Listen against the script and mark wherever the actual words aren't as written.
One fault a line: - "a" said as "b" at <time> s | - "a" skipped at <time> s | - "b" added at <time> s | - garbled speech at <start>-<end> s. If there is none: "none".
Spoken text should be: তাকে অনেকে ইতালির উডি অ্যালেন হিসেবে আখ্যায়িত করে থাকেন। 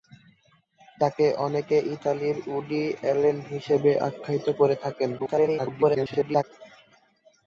- garbled speech at 5.2-6.4 s